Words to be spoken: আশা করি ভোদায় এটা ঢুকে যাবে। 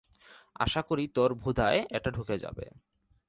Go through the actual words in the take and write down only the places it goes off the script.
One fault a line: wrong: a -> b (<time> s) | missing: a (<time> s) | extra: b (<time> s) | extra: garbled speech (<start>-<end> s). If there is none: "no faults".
extra: তোর (1.1 s)